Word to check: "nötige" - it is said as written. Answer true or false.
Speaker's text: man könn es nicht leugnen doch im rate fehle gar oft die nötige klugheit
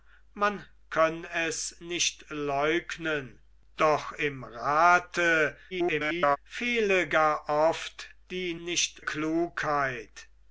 false